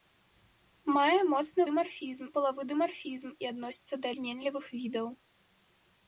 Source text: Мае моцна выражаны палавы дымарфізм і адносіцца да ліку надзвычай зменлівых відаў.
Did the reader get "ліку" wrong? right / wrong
wrong